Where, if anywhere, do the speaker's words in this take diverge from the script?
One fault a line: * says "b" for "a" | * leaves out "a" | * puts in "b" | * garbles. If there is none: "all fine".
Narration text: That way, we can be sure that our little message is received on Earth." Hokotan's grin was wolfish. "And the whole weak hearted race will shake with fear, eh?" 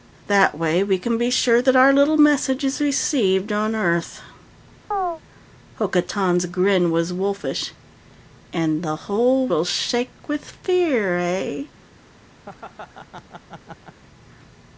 * leaves out "weak hearted race"